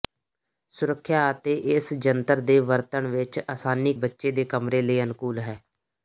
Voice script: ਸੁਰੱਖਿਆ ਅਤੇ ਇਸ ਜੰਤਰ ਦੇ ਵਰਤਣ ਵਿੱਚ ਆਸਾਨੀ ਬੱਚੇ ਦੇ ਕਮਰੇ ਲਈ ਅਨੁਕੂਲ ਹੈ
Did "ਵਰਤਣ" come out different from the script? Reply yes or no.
no